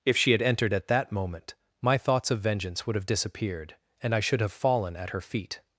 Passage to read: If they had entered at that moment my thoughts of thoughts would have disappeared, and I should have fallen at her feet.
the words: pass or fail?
fail